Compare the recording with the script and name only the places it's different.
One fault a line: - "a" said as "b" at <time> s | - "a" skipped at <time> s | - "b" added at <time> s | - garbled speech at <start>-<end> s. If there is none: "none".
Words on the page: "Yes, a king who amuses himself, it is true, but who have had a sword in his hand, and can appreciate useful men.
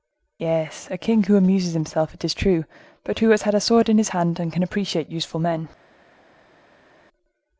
- "have" said as "has" at 3.3 s